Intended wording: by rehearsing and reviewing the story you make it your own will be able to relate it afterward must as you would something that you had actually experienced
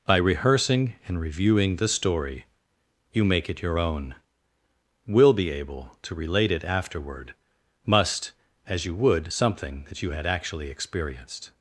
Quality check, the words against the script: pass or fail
pass